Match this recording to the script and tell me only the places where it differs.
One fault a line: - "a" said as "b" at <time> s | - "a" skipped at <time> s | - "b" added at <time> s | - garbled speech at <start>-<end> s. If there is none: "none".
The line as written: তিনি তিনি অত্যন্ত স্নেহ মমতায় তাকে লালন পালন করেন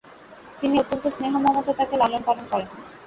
- "তিনি" skipped at 0.8 s